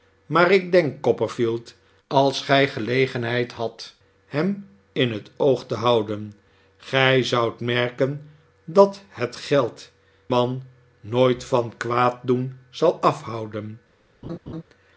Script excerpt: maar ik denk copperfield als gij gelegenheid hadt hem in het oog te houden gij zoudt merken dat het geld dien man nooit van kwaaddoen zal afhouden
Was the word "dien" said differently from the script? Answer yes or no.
yes